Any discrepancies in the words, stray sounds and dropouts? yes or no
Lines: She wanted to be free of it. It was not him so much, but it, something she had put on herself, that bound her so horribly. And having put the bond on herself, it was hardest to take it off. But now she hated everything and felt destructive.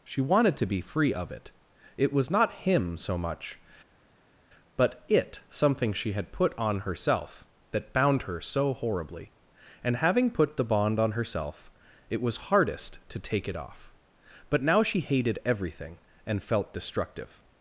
no